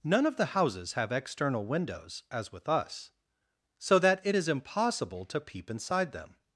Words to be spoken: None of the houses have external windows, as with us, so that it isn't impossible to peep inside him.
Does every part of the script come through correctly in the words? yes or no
no